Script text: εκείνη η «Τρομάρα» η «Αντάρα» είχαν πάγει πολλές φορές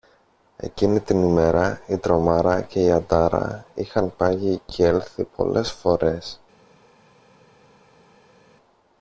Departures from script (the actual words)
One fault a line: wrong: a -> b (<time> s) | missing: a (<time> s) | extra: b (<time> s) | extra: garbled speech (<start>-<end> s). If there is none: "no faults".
extra: την ημέρα (1.0 s)
extra: και (2.6 s)
extra: κι έλθει (4.7 s)